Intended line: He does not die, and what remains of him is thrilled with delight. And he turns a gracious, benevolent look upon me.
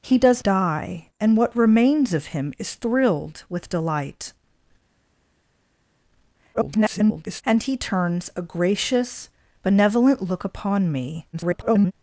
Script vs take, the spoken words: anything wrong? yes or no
yes